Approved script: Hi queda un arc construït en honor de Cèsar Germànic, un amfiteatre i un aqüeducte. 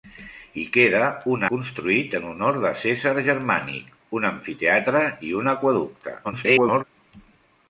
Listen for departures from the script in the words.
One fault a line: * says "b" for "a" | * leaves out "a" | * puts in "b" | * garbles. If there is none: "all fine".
* leaves out "arc"
* garbles